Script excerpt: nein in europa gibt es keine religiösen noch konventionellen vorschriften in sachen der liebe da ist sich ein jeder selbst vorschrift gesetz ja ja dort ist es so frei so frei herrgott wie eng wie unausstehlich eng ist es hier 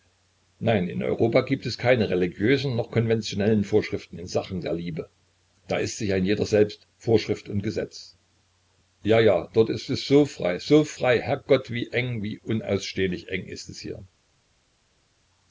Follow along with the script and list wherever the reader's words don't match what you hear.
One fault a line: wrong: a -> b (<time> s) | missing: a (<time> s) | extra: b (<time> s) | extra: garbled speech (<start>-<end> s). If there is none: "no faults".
extra: und (7.5 s)